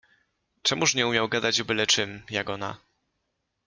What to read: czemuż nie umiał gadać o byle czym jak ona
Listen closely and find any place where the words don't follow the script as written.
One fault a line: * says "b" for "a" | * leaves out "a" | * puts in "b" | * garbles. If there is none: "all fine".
all fine